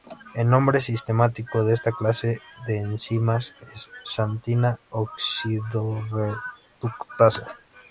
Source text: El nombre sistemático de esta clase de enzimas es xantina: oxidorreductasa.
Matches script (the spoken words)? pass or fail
pass